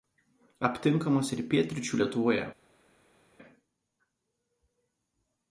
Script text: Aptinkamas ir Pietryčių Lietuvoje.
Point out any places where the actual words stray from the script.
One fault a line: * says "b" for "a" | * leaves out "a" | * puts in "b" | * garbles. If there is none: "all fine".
all fine